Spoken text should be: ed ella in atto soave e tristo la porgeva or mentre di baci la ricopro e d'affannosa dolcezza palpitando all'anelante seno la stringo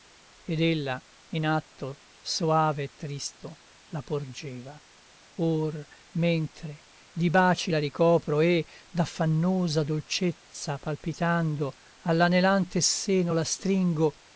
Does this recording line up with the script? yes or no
yes